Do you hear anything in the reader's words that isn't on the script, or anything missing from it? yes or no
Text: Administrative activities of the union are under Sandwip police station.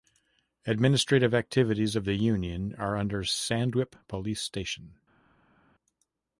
no